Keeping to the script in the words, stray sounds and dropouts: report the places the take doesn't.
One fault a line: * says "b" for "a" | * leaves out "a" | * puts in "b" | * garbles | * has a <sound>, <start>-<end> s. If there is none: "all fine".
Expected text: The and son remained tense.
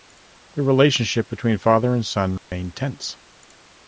* puts in "relationship between father"
* has a dropout, 2.4-2.5 s